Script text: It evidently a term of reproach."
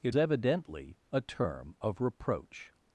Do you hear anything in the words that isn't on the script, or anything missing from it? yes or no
no